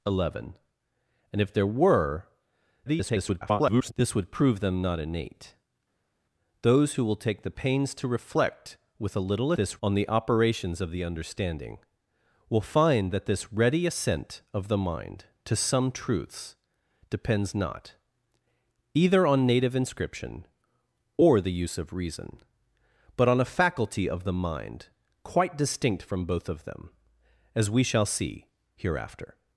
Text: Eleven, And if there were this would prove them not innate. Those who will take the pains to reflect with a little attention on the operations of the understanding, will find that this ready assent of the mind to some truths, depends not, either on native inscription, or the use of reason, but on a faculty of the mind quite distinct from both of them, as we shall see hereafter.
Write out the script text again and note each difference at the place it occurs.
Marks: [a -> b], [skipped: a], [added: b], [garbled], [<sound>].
Eleven, And if there were [garbled] this would prove them not innate. Those who will take the pains to reflect with a little [attention -> this] on the operations of the understanding, will find that this ready assent of the mind to some truths, depends not, either on native inscription, or the use of reason, but on a faculty of the mind quite distinct from both of them, as we shall see hereafter.